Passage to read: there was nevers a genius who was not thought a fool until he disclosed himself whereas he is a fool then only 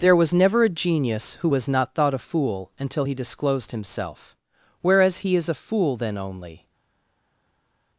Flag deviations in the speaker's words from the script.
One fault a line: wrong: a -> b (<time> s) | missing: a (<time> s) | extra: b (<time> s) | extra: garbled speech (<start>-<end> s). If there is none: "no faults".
wrong: nevers -> never (0.3 s)